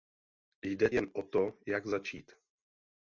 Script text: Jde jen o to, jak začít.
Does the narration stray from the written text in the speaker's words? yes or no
no